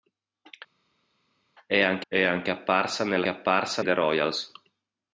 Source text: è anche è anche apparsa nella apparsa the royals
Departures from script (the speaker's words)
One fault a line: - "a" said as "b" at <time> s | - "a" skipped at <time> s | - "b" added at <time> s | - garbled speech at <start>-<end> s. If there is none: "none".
none